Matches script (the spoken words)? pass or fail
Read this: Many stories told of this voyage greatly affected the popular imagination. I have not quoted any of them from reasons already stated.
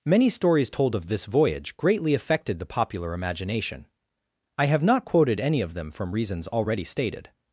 pass